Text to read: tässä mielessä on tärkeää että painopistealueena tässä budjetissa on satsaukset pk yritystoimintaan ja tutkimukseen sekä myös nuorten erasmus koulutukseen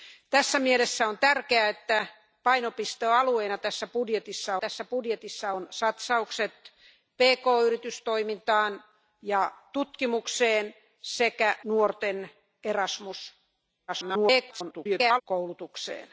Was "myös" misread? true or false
true